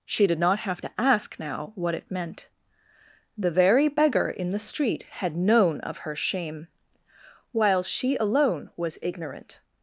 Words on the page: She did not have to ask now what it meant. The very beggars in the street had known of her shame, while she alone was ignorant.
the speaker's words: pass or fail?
fail